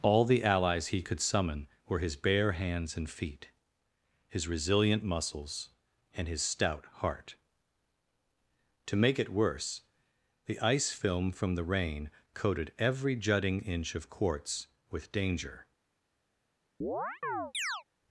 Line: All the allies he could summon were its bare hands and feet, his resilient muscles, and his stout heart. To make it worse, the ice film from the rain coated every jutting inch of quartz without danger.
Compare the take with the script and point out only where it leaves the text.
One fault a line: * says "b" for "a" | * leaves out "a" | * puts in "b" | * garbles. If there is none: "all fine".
* says "his" for "its"
* says "with" for "without"